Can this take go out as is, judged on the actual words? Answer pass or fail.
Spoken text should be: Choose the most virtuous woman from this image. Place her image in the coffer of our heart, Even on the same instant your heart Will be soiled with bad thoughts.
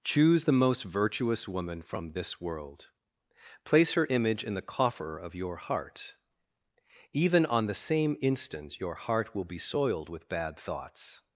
fail